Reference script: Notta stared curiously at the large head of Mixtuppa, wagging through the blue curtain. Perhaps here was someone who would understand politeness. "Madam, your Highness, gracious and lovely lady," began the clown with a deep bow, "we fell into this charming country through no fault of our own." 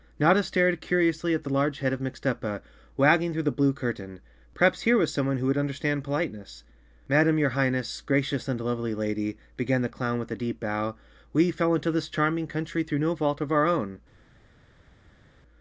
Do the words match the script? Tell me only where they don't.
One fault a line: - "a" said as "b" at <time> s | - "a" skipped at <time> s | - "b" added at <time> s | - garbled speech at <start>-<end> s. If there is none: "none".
none